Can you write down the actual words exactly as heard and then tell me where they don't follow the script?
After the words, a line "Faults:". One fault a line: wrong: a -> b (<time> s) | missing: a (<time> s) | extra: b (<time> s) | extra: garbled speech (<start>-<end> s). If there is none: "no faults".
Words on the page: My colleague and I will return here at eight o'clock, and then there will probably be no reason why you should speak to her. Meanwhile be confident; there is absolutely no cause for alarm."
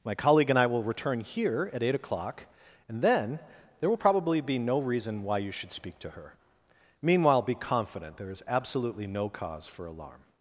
My colleague and I will return here at eight o'clock, and then there will probably be no reason why you should speak to her. Meanwhile be confident; there is absolutely no cause for alarm."
Faults:
no faults